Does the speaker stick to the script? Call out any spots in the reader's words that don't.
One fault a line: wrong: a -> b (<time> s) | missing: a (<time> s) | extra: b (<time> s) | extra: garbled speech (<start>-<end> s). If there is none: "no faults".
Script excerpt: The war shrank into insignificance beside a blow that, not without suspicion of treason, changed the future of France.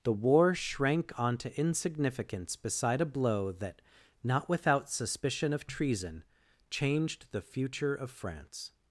wrong: into -> onto (1.2 s)